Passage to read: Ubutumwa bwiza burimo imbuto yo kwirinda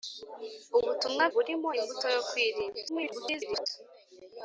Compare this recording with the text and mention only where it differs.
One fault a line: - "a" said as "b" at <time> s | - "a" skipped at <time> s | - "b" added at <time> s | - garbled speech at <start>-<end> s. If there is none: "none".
- "bwiza" skipped at 1.2 s
- garbled speech at 2.9-3.7 s